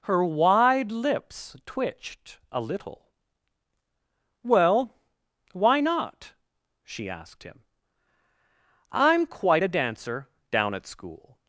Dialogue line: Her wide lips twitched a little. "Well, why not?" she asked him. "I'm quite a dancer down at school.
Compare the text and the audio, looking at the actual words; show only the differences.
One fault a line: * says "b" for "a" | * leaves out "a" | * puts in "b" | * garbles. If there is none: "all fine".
all fine